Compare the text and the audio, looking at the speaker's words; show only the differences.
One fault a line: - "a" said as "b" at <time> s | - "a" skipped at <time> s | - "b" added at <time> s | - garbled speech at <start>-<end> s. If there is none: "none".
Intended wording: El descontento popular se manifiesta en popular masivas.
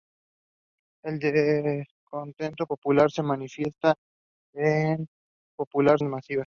none